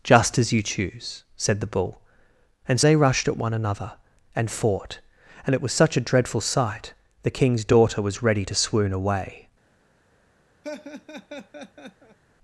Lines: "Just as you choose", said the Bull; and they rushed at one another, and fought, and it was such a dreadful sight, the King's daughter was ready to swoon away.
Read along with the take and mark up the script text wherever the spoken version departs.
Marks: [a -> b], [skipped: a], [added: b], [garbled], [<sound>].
"Just as you choose", said the Bull; and they rushed at one another, and fought, and it was such a dreadful sight, the King's daughter was ready to swoon away. [laugh]